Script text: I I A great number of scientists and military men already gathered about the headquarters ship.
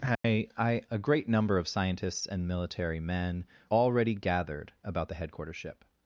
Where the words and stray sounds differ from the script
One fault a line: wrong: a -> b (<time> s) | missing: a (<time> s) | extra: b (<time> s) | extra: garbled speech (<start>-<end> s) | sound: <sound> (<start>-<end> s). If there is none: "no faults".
sound: dropout (0.2-0.2 s)